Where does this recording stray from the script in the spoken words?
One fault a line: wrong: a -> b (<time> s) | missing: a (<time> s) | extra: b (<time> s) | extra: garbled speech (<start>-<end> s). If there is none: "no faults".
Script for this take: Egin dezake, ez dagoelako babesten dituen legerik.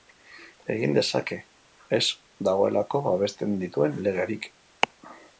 no faults